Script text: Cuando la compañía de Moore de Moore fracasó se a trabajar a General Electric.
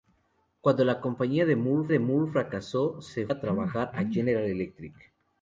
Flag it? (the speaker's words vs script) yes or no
no